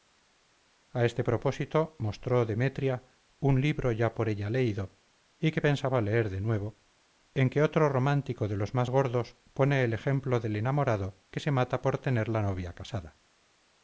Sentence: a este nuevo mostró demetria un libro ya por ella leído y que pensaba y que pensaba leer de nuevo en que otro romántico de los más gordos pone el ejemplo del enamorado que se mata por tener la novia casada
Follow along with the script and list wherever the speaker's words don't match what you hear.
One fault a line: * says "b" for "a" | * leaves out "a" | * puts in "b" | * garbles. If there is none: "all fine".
* says "propósito" for "nuevo"
* leaves out "y que pensaba"